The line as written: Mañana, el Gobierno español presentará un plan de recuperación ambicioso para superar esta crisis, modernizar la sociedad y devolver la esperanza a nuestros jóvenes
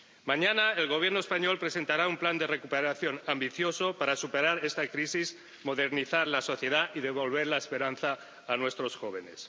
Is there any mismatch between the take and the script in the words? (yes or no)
no